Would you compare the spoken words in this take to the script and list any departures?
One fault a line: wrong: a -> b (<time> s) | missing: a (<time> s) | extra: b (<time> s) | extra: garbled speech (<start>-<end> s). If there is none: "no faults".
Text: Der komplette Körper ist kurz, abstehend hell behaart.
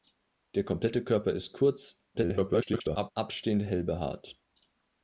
extra: garbled speech (2.1-3.1 s)